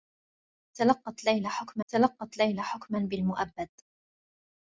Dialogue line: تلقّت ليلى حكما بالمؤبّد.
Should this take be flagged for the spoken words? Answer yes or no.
yes